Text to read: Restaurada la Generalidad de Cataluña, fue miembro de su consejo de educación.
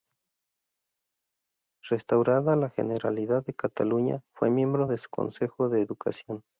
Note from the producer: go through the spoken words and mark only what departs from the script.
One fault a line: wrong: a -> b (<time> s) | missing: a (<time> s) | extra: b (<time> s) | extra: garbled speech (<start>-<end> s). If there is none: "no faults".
no faults